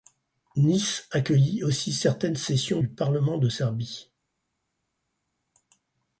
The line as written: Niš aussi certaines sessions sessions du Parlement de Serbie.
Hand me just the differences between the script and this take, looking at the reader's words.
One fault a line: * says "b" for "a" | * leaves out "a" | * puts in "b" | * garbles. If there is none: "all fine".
* puts in "accueillit"
* leaves out "sessions"